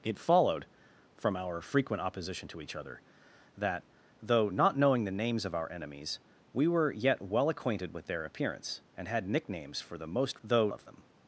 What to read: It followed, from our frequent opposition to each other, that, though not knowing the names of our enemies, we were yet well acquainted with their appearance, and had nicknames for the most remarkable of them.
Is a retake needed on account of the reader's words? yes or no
yes